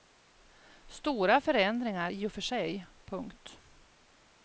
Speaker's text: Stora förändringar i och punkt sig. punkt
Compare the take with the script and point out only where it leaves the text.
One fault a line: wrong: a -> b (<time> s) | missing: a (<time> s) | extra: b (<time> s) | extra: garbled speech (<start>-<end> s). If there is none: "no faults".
wrong: punkt -> för (2.3 s)